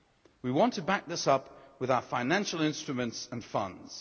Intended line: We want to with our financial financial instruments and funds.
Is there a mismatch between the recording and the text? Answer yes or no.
yes